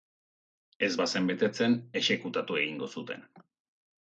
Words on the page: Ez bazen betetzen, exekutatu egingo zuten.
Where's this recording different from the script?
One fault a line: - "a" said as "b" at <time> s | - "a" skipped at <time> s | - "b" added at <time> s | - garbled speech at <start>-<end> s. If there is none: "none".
none